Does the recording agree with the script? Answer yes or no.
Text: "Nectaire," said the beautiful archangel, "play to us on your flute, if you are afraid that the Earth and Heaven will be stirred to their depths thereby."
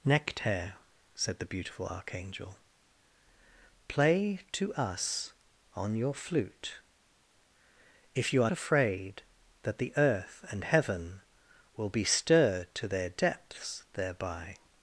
yes